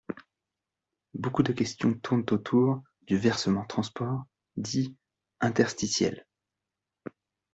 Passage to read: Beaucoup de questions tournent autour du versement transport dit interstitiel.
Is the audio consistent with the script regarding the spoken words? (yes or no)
yes